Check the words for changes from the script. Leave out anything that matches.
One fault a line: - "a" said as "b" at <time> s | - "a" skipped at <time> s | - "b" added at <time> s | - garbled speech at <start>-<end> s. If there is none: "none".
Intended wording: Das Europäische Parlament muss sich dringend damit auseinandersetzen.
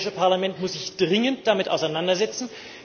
none